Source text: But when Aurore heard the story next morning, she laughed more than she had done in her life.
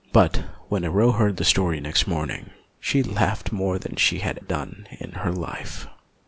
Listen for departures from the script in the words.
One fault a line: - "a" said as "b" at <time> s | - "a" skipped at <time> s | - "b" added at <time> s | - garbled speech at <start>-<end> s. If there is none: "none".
none